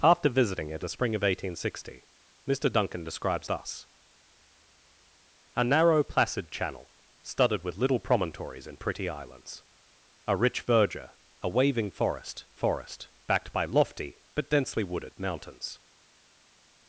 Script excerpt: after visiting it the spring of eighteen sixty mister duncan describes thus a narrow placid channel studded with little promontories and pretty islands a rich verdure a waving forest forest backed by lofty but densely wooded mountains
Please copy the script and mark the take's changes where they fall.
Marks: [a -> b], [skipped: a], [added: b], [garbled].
after visiting it the spring of eighteen sixty mister duncan describes thus a narrow placid channel studded with little promontories and pretty islands a rich verdure a waving forest forest backed by lofty but densely wooded mountains